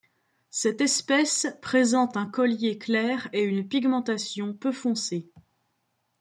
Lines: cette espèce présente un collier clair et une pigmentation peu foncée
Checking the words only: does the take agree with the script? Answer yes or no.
yes